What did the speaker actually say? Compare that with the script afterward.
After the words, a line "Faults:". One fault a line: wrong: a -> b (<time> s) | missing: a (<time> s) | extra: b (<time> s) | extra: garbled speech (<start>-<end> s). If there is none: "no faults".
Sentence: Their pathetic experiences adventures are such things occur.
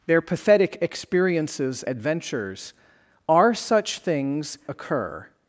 Their pathetic experiences adventures are such things occur.
Faults:
no faults